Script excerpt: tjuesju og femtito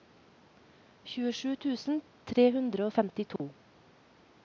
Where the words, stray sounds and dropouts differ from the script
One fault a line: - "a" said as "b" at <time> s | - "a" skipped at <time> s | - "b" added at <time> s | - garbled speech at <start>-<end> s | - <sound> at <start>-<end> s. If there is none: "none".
- "tusen tre hundre" added at 1.6 s
- dropout at 3.4-3.4 s